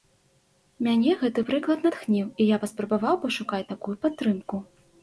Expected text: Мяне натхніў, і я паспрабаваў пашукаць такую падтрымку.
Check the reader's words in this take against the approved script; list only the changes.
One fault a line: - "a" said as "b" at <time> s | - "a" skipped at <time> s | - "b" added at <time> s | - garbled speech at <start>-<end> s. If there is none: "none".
- "гэты прыклад" added at 1.2 s